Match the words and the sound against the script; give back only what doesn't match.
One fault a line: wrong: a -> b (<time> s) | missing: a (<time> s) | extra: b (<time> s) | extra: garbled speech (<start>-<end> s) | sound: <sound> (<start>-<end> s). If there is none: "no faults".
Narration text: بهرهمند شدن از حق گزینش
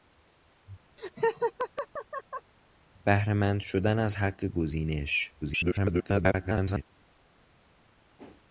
sound: laugh (1.0-2.5 s)
extra: garbled speech (5.4-6.8 s)
sound: whoosh (8.2-8.5 s)